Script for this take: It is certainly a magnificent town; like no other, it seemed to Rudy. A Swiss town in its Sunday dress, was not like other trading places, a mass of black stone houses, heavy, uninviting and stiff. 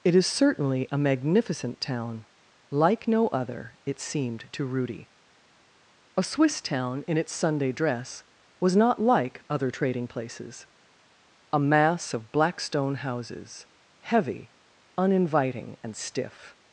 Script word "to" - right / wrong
right